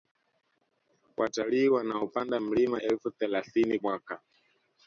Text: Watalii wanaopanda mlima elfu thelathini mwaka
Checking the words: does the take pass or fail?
pass